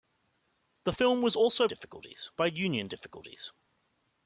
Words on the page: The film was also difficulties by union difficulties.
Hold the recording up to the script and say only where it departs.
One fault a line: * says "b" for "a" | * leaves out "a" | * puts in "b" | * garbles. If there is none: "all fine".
all fine